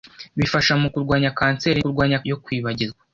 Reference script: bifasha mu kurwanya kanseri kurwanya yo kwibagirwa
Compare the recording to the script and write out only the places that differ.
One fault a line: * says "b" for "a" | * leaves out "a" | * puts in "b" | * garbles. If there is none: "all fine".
all fine